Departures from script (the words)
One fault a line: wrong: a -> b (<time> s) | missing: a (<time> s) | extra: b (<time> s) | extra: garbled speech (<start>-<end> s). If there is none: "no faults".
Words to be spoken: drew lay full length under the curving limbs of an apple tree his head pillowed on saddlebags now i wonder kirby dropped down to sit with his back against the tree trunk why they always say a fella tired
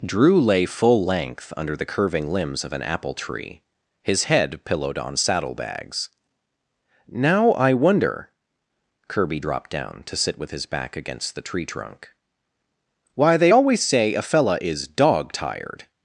extra: is dog (14.6 s)